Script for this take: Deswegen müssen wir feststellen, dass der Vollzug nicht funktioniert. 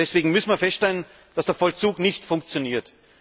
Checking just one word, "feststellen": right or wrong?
right